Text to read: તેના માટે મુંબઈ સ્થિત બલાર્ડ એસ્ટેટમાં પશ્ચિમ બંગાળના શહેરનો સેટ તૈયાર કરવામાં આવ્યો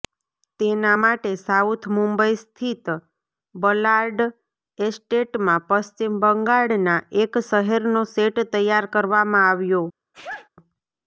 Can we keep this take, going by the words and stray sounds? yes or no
no